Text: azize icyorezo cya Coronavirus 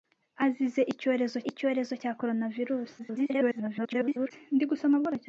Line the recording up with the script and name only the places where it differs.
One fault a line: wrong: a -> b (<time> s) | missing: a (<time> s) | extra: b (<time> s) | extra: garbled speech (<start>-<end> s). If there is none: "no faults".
extra: icyorezo (1.5 s)
extra: garbled speech (3.0-4.3 s)